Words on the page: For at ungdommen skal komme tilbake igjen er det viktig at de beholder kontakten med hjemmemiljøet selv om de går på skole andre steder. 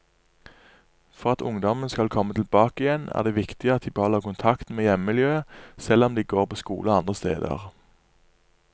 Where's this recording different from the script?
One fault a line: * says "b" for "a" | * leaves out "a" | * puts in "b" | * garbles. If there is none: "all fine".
all fine